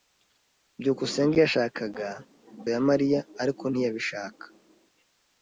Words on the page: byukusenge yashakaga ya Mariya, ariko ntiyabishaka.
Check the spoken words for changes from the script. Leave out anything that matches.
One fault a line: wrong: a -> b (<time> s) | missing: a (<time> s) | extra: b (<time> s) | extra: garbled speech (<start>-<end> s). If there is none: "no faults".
no faults